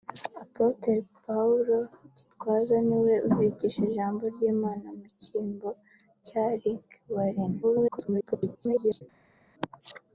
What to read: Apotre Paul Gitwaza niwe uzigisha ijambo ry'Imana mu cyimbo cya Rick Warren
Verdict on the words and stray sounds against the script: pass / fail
fail